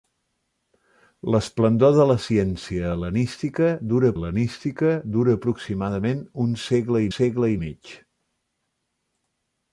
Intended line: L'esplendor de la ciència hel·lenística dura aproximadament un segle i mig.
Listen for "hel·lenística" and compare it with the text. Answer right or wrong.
right